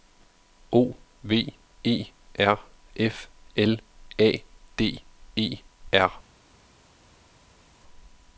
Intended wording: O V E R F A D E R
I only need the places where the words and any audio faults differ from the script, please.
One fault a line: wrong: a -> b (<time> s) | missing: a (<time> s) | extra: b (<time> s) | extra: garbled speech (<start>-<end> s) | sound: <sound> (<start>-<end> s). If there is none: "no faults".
extra: L (3.5 s)